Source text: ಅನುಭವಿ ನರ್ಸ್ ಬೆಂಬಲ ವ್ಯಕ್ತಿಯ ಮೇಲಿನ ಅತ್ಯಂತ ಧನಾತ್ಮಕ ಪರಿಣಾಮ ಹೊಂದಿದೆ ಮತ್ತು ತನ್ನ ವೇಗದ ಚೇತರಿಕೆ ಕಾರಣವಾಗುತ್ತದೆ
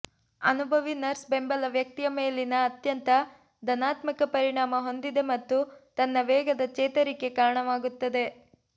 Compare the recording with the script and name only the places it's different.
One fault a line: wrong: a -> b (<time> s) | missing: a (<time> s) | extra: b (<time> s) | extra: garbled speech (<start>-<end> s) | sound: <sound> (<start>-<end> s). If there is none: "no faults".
no faults